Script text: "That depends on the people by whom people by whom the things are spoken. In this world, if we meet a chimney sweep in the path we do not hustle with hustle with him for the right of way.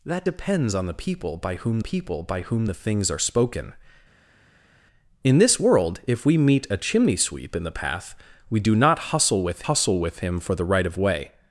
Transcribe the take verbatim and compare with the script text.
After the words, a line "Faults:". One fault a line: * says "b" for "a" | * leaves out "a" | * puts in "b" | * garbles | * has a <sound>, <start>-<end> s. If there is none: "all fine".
"That depends on the people by whom people by whom the things are spoken. In this world, if we meet a chimney sweep in the path we do not hustle with hustle with him for the right of way.
Faults:
all fine